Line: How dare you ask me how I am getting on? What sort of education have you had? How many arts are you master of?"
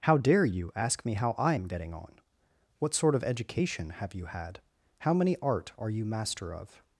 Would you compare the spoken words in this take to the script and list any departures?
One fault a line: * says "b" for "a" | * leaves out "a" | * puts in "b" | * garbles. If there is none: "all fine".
* says "art" for "arts"